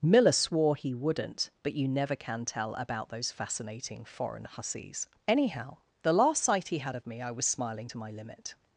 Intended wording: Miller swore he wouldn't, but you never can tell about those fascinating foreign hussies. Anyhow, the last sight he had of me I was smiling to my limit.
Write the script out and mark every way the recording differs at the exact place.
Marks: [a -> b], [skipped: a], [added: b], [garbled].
Miller swore he wouldn't, but you never can tell about those fascinating foreign hussies. Anyhow, the last sight he had of me I was smiling to my limit.